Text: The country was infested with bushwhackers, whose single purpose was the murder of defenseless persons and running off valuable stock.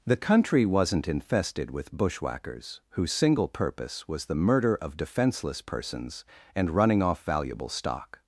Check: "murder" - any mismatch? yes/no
no